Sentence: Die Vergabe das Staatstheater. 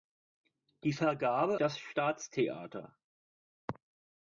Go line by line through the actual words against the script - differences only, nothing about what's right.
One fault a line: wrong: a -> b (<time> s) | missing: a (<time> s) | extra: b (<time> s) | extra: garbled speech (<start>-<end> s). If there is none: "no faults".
no faults